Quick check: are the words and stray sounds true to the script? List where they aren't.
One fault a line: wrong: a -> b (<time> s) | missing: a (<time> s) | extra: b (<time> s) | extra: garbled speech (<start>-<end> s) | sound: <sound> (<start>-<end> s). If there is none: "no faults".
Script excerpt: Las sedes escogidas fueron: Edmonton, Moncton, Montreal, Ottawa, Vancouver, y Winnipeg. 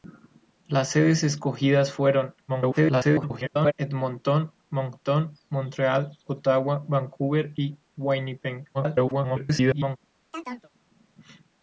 extra: garbled speech (2.5-3.7 s)
extra: garbled speech (8.7-10.0 s)
sound: chirp (10.3-10.7 s)